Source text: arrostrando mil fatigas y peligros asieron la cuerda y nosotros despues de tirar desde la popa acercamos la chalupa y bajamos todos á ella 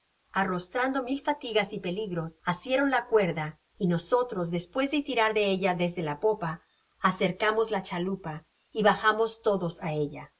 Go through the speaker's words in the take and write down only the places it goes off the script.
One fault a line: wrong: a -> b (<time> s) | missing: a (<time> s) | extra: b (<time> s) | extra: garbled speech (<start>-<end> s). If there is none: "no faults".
extra: de ella (5.3 s)